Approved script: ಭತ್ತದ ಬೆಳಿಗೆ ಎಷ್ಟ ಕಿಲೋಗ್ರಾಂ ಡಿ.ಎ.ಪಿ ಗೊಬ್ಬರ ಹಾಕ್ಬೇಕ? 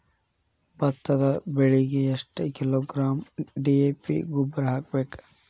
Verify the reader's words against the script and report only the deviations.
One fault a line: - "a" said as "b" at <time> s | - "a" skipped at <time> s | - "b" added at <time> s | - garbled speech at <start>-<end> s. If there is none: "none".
none